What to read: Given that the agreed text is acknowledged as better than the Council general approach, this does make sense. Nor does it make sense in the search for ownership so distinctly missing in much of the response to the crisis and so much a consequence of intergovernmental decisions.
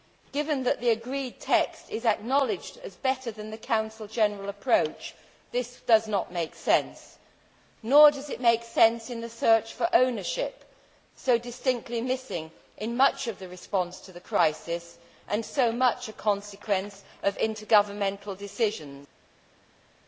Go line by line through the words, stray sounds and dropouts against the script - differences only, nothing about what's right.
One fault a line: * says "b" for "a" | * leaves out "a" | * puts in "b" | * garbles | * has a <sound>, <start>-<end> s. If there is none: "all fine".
* puts in "not"